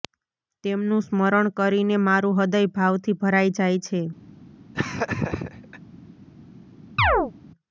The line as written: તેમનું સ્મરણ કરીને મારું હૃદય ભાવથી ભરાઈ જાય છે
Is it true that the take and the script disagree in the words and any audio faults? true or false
true